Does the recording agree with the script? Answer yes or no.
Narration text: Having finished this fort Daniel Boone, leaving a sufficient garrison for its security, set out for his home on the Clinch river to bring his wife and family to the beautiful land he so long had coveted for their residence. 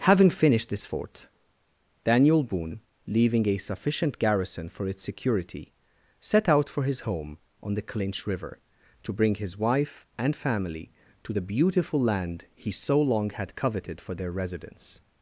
yes